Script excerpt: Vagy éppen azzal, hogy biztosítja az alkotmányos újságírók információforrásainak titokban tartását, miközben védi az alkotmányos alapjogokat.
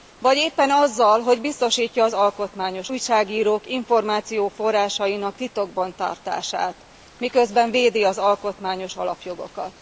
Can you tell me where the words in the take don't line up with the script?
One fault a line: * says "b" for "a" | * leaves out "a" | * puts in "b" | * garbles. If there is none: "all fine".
all fine